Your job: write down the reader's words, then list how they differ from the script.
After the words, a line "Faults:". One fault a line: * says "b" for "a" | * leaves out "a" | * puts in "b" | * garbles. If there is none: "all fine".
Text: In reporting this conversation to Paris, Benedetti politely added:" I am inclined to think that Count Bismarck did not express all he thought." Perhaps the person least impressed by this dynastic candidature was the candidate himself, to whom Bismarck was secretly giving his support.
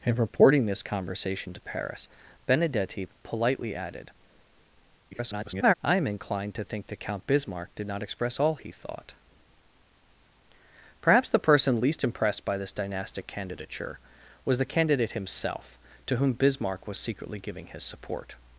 In reporting this conversation to Paris, Benedetti politely added:" [garbled] I am inclined to think that Count Bismarck did not express all he thought." Perhaps the person least impressed by this dynastic candidature was the candidate himself, to whom Bismarck was secretly giving his support.
Faults:
* garbles